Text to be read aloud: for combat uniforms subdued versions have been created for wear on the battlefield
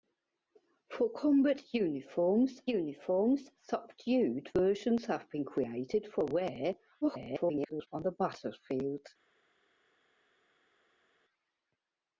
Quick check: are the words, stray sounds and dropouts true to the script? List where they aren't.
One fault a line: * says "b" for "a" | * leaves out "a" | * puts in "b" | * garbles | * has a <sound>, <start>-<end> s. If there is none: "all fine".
* puts in "uniforms"
* garbles